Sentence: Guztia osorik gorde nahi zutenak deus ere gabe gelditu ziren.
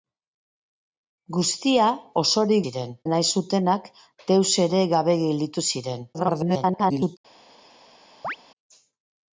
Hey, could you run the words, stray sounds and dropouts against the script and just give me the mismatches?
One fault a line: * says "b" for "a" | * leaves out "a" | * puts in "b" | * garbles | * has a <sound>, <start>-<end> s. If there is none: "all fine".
* says "ziren" for "gorde"
* garbles
* has a chirp, 8.2-8.4 s